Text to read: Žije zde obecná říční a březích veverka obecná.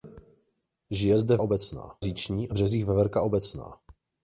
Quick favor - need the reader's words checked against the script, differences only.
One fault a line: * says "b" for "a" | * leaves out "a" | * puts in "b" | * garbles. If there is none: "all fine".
all fine